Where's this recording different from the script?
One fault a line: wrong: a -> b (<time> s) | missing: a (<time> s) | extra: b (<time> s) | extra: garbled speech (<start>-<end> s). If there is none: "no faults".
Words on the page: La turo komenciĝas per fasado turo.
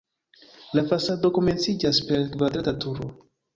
wrong: turo -> fasado (0.9 s)
wrong: fasado -> kvadrata (2.4 s)